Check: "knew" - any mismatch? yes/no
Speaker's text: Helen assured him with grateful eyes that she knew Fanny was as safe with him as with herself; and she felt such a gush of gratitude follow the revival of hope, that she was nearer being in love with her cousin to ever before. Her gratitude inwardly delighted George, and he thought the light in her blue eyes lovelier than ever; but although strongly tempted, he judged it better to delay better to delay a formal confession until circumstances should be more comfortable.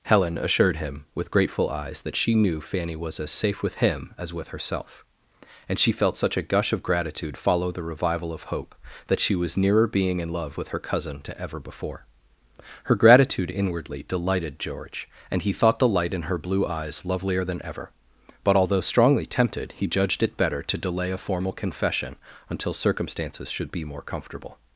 no